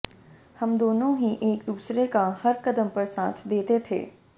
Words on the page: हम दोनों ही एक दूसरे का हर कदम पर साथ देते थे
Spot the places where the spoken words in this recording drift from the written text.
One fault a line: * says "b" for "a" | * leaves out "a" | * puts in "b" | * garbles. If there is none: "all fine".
all fine